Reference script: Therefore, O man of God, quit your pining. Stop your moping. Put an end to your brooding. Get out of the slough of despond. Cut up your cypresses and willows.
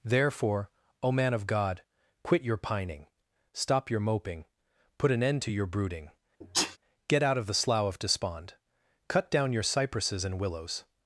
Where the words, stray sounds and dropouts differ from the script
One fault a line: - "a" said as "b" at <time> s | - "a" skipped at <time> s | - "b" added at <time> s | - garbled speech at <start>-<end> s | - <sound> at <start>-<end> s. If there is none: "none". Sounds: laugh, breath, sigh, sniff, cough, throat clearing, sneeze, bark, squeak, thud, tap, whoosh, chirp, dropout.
- sneeze at 6.4-6.8 s
- "up" said as "down" at 9.3 s